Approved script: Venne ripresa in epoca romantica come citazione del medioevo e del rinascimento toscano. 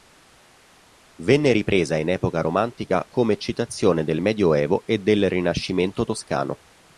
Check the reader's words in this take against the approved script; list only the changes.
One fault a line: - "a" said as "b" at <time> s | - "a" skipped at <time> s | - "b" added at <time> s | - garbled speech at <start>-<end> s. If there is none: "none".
none